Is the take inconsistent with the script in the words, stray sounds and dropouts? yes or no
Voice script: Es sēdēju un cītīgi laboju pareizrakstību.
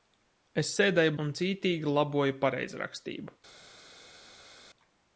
no